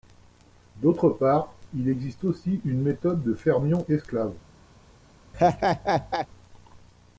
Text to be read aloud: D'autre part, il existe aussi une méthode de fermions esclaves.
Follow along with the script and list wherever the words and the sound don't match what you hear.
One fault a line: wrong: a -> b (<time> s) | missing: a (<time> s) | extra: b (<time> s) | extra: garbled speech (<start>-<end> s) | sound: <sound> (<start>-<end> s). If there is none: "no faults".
sound: laugh (5.3-6.3 s)